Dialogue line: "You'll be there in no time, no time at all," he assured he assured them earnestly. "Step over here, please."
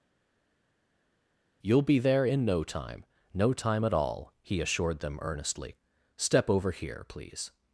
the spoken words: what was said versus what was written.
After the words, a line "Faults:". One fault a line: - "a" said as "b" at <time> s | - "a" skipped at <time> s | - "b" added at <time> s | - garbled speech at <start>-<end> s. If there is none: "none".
"You'll be there in no time, no time at all," he assured them earnestly. "Step over here, please."
Faults:
- "he assured" skipped at 5.0 s